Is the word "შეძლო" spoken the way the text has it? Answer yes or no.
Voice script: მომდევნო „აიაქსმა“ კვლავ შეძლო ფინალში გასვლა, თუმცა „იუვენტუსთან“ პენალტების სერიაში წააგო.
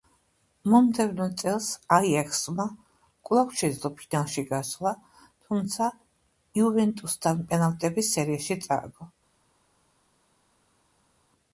yes